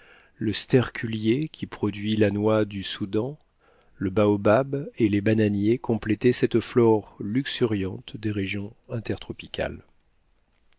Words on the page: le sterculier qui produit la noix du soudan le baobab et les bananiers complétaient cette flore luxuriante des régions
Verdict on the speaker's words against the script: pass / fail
pass